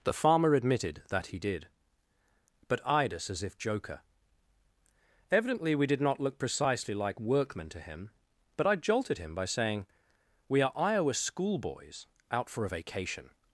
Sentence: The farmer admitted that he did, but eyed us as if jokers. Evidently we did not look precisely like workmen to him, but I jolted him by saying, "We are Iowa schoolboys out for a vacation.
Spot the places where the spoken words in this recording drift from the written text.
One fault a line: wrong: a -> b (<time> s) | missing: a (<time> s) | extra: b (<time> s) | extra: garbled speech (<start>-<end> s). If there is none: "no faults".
wrong: jokers -> joker (3.6 s)